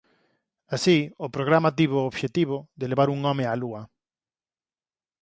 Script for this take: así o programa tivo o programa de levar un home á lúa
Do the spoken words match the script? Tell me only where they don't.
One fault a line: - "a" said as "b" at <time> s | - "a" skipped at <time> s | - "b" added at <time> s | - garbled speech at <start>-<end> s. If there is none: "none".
- "programa" said as "obxectivo" at 2.1 s